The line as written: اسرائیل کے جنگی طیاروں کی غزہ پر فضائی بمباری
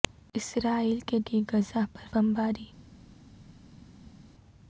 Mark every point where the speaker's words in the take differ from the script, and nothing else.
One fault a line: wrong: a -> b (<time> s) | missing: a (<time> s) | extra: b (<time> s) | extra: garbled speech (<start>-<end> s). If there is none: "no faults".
missing: جنگی طیاروں (1.2 s)
missing: فضائی (2.0 s)